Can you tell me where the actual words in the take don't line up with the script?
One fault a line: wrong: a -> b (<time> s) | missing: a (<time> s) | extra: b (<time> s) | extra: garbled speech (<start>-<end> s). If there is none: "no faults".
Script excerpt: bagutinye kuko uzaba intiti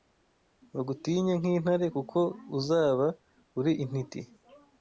extra: nk'intare (1.4 s)
extra: uri (3.6 s)